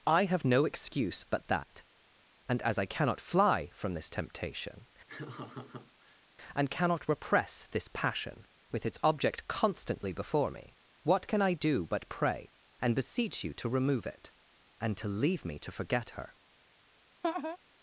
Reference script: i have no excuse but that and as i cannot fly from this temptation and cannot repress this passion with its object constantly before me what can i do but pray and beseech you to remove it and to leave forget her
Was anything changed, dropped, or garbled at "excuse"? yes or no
no